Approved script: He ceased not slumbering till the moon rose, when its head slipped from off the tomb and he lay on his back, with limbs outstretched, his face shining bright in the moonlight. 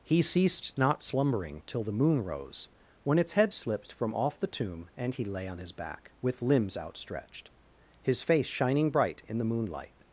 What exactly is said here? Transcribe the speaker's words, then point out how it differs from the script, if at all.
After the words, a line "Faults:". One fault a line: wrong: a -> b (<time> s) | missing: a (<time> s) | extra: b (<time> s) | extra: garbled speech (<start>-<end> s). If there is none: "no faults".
He ceased not slumbering till the moon rose, when its head slipped from off the tomb and he lay on his back, with limbs outstretched, his face shining bright in the moonlight.
Faults:
no faults